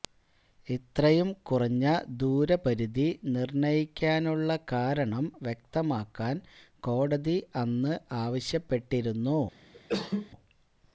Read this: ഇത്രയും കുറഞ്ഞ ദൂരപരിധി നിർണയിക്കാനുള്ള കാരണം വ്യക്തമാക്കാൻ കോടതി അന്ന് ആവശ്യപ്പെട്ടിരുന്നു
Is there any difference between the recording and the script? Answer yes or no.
no